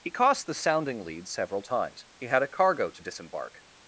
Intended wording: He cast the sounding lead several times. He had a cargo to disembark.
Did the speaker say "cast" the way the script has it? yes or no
no